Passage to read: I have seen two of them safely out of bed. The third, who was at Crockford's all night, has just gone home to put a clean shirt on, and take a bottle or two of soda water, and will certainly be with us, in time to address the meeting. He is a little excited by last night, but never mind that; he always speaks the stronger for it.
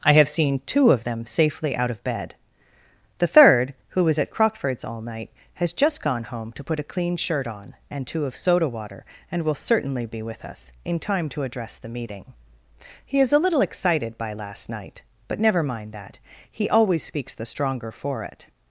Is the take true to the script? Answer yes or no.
no